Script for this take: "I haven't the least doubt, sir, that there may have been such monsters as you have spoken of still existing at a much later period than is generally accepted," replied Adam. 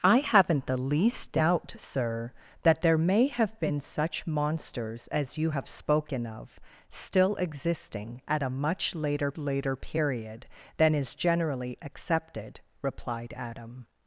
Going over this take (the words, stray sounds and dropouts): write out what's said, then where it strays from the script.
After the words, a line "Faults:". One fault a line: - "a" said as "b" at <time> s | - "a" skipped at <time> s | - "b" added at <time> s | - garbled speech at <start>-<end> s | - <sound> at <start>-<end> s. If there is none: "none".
"I haven't the least doubt, sir, that there may have been such monsters as you have spoken of still existing at a much later later period than is generally accepted," replied Adam.
Faults:
- "later" added at 9.4 s